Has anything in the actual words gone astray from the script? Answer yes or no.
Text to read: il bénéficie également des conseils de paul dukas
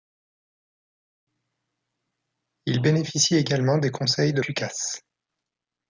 yes